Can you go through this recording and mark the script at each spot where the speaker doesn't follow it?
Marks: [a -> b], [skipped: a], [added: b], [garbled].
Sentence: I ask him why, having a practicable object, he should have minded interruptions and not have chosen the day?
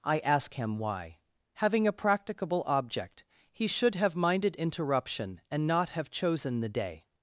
I ask him why, having a practicable object, he should have minded [interruptions -> interruption] and not have chosen the day?